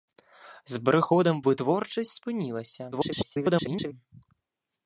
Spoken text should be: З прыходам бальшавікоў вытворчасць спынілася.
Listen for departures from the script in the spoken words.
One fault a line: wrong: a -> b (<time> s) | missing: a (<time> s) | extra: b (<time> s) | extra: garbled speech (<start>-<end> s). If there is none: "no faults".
missing: бальшавікоў (1.4 s)
extra: garbled speech (2.9-3.9 s)